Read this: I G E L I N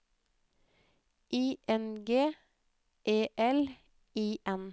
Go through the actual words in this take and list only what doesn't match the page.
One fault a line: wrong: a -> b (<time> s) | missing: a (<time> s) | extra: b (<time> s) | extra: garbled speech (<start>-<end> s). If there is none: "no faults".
extra: N (1.7 s)